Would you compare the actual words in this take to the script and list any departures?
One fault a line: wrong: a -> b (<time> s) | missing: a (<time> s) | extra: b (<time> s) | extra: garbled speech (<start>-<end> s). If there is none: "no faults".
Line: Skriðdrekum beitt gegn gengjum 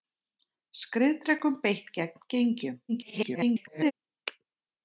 extra: garbled speech (2.9-3.9 s)